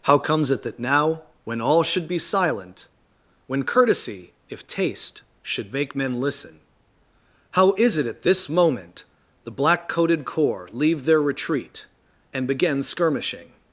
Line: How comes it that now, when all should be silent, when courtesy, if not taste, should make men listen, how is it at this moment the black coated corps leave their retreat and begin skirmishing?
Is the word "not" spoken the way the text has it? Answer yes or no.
no